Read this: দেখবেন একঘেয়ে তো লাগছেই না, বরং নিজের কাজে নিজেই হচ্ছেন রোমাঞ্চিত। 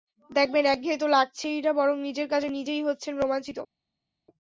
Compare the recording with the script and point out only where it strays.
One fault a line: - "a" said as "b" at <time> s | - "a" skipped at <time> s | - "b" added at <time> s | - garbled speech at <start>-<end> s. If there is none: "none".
none